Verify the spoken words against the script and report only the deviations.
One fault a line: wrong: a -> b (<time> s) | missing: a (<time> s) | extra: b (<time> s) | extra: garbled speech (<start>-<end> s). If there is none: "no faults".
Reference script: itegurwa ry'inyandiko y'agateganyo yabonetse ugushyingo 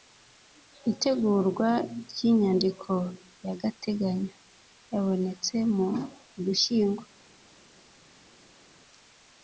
extra: mu (5.7 s)